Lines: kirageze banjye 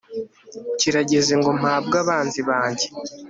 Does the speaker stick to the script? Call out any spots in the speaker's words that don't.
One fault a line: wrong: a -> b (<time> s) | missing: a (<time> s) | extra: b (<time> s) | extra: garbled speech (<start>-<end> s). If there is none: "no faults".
extra: ngo mpabwe abanzi (1.4 s)